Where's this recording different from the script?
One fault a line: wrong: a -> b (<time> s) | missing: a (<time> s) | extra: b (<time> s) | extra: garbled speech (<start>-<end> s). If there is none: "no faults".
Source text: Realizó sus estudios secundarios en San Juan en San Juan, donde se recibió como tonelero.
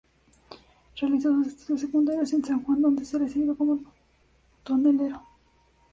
missing: en San Juan (2.8 s)